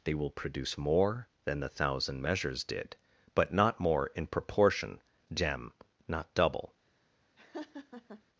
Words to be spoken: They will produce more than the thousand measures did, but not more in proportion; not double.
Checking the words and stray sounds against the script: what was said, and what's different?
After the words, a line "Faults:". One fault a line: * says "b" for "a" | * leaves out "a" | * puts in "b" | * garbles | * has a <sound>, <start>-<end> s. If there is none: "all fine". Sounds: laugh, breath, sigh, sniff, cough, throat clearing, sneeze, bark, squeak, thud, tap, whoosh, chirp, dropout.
They will produce more than the thousand measures did, but not more in proportion; gem not double.
Faults:
* puts in "gem"
* has a laugh, 7.4-8.2 s